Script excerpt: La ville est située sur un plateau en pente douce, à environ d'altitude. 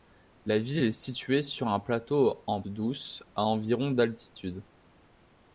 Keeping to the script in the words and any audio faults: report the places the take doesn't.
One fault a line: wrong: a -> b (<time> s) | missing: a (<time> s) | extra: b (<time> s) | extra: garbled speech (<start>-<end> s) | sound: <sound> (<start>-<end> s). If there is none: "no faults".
missing: pente (2.6 s)